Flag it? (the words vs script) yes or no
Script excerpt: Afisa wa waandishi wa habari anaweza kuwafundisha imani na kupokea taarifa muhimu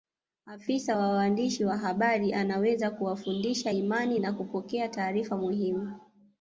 no